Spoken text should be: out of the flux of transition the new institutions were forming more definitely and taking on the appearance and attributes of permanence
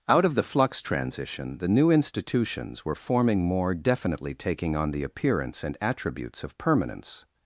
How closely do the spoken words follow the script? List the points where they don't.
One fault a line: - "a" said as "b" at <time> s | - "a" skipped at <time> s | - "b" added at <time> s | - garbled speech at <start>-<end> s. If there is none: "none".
- "of" skipped at 0.8 s
- "and" skipped at 4.3 s